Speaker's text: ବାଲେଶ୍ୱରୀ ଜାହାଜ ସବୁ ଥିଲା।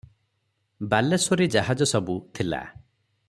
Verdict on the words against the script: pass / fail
pass